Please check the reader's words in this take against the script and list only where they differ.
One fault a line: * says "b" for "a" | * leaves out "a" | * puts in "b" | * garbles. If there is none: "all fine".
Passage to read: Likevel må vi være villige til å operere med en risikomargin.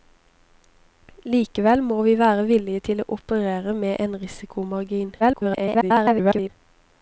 * garbles